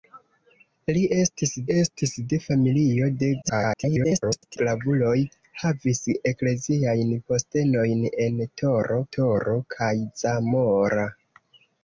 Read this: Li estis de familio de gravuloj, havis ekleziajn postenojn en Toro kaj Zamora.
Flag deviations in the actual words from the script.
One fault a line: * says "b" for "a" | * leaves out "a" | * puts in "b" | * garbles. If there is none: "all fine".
* puts in "estis"
* garbles
* puts in "Toro"